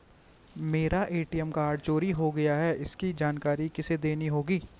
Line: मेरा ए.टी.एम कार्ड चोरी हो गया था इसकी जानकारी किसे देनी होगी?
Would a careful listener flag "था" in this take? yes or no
yes